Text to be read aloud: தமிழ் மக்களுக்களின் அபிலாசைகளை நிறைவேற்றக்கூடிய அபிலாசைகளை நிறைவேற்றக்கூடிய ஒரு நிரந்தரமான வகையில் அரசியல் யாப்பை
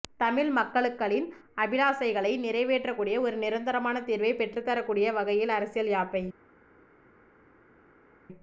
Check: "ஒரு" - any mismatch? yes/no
yes